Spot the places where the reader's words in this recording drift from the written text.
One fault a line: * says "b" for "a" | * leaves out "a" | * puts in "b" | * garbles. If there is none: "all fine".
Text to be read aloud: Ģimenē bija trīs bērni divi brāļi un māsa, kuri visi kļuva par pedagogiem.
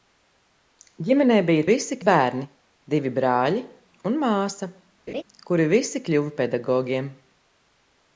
* says "visi" for "trīs"
* leaves out "par"